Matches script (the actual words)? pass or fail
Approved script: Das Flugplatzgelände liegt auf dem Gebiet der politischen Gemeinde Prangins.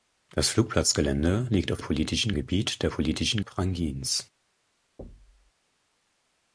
fail